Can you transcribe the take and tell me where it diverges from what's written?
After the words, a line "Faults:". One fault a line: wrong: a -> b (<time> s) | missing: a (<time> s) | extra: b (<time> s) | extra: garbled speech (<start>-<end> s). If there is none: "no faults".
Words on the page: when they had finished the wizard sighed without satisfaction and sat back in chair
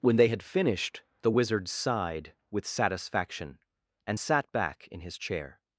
when they had finished the wizard sighed with satisfaction and sat back in his chair
Faults:
wrong: without -> with (2.5 s)
extra: his (5.0 s)